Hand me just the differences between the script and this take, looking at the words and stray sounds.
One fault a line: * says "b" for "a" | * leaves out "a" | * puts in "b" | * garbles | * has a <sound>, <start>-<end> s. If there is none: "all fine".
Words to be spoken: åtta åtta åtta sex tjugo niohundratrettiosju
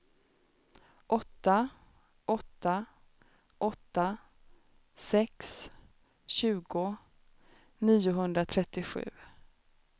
all fine